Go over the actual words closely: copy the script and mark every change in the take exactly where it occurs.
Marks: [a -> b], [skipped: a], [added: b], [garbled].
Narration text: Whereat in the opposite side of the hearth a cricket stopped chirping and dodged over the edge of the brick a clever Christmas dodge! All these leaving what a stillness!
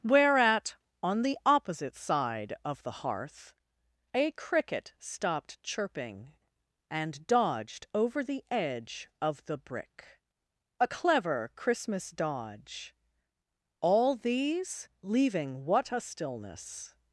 Whereat [in -> on] the opposite side of the hearth a cricket stopped chirping and dodged over the edge of the brick a clever Christmas dodge! All these leaving what a stillness!